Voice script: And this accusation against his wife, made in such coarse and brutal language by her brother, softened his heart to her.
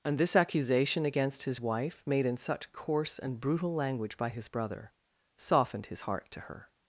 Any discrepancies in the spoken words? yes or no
yes